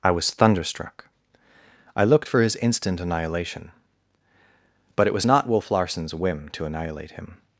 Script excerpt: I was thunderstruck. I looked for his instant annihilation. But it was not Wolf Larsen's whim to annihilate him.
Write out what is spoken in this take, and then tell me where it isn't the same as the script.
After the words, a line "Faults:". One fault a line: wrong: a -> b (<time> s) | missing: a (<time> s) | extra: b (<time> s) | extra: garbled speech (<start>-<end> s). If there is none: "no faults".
I was thunderstruck. I looked for his instant annihilation. But it was not Wolf Larsen's whim to annihilate him.
Faults:
no faults